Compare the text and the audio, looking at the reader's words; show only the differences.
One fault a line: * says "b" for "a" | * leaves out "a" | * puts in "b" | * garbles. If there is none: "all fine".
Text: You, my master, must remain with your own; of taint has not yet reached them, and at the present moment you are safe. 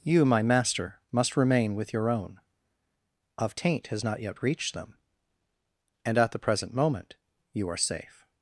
all fine